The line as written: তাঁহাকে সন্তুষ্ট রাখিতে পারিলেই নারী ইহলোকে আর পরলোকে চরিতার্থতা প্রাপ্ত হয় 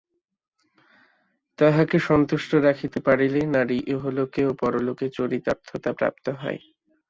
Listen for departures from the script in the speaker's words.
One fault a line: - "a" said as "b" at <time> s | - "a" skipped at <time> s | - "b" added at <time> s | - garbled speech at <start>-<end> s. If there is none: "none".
- "আর" said as "ও" at 4.5 s